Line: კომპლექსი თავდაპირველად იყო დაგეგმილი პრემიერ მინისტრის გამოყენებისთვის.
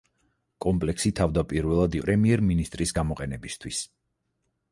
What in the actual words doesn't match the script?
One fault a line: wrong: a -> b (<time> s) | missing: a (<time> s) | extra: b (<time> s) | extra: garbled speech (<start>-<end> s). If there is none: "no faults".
missing: იყო დაგეგმილი (2.0 s)